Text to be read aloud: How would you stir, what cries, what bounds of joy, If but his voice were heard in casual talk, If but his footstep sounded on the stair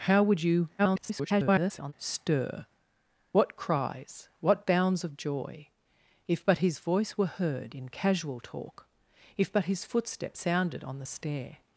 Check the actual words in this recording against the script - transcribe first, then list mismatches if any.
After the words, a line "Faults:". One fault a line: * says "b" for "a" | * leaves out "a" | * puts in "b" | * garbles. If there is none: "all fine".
How would you [garbled] stir, what cries, what bounds of joy, If but his voice were heard in casual talk, If but his footstep sounded on the stair
Faults:
* garbles